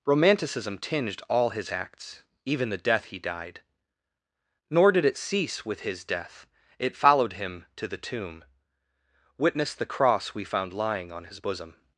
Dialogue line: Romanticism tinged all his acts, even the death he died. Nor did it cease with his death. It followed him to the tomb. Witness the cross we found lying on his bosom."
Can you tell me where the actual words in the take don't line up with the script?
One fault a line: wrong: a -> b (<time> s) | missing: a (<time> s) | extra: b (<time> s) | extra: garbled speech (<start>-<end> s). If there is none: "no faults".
no faults